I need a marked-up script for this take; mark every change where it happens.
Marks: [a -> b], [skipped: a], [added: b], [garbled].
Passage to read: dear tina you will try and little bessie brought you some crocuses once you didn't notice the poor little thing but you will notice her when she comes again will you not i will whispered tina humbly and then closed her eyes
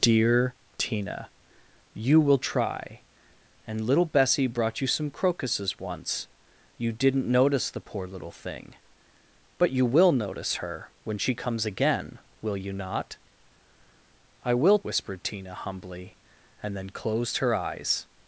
dear tina you will try and little bessie brought you some crocuses once you didn't notice the poor little thing but you will notice her when she comes again will you not i will whispered tina humbly and then closed her eyes